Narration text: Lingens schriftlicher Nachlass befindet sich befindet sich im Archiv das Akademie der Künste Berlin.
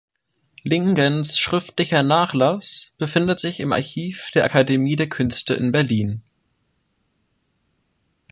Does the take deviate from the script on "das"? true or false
true